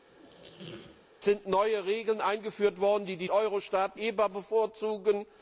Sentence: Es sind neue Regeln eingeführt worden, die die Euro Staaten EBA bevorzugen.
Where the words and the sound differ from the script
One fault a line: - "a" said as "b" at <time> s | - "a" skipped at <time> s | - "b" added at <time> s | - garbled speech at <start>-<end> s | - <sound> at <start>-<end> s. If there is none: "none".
- squeak at 0.1-1.1 s